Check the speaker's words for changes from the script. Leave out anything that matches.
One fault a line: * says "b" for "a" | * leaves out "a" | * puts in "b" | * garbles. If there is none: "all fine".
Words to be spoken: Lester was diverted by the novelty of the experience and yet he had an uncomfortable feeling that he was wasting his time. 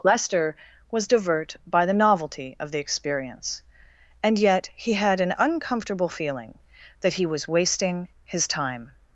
* says "divert" for "diverted"